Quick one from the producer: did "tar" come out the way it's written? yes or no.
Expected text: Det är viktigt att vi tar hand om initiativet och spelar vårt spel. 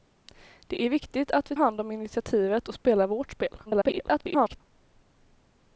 no